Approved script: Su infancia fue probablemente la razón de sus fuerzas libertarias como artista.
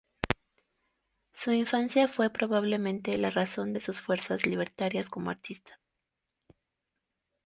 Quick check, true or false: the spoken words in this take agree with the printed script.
true